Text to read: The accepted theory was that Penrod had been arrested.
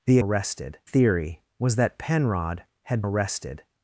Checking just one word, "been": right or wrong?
wrong